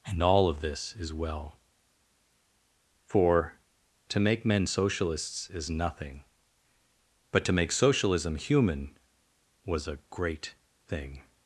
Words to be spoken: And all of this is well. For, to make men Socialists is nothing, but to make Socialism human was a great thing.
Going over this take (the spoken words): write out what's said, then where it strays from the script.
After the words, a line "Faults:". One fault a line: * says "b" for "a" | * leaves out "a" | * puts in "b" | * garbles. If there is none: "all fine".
And all of this is well. For, to make men Socialists is nothing, but to make Socialism human was a great thing.
Faults:
all fine